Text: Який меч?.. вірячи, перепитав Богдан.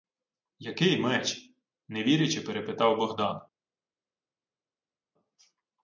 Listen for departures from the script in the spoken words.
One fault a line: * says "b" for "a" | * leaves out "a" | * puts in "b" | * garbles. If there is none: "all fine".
* puts in "не"